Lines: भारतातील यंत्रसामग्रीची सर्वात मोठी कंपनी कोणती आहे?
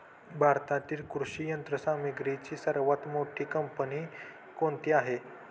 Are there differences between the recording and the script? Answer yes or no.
yes